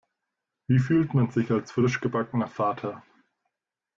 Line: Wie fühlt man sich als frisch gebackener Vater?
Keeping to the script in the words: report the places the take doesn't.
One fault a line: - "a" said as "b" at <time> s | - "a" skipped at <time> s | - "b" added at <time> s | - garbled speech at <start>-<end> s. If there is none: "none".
none